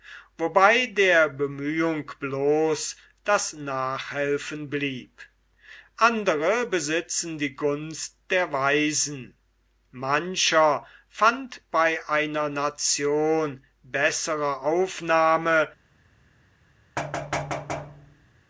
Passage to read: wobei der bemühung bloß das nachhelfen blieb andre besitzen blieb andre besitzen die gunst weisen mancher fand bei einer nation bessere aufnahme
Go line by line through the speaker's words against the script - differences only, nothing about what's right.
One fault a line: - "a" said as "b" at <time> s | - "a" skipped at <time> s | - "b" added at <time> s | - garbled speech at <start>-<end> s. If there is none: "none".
- "blieb andre besitzen" skipped at 7.4 s
- "der" added at 8.3 s